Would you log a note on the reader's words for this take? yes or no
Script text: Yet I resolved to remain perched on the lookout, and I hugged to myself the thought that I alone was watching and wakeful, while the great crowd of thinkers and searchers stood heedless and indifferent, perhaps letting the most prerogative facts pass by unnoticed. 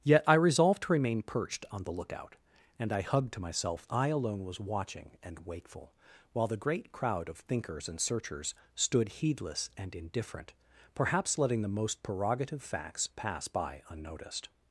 yes